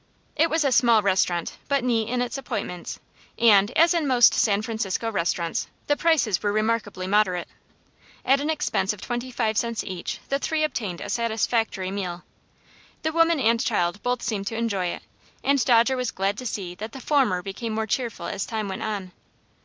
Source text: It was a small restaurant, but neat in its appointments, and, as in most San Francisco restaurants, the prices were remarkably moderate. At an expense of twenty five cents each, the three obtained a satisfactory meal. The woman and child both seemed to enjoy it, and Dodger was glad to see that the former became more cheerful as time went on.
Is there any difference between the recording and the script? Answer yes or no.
no